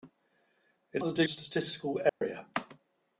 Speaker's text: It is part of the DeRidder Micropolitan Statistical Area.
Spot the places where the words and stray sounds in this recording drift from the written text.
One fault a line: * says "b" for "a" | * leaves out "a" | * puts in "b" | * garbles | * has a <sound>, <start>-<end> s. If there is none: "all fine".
* leaves out "is part"
* leaves out "DeRidder Micropolitan"
* has a dropout, 2.1-2.2 s